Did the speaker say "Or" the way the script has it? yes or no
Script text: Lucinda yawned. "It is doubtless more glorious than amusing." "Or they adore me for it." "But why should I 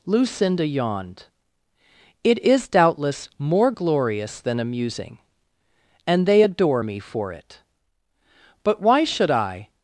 no